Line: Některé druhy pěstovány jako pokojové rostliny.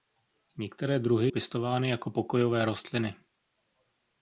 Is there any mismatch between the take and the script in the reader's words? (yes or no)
no